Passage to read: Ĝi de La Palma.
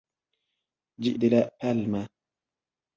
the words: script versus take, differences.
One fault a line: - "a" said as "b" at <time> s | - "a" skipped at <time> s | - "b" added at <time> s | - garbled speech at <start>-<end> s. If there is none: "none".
none